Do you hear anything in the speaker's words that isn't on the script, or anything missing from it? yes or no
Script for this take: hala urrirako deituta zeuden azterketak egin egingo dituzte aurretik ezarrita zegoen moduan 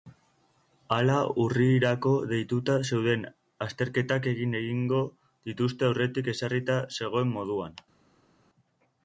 no